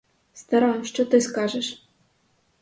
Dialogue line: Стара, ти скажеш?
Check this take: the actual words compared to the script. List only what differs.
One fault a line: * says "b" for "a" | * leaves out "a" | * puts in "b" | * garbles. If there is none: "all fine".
* puts in "що"